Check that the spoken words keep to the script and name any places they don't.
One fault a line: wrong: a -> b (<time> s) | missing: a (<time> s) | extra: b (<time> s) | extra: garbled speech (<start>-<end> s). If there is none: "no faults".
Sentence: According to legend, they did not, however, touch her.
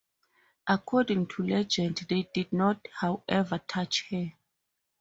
no faults